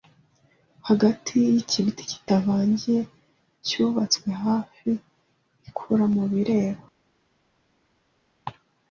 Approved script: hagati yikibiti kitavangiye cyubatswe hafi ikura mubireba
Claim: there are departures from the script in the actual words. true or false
false